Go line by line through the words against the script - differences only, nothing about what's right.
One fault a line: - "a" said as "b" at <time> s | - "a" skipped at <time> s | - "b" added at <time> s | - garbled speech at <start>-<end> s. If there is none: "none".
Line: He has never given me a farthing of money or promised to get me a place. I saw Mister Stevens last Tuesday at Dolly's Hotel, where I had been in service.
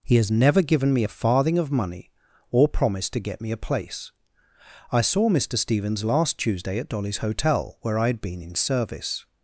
none